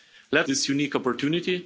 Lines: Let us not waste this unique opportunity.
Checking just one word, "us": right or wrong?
wrong